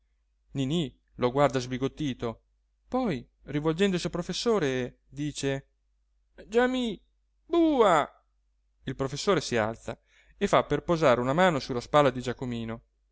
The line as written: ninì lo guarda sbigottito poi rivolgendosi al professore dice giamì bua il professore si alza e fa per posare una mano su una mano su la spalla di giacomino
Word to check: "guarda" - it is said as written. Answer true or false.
true